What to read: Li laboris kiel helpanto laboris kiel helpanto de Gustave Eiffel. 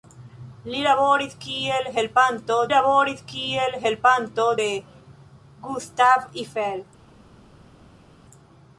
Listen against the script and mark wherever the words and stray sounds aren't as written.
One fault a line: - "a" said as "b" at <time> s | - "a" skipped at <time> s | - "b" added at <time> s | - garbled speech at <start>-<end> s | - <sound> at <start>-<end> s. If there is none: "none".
none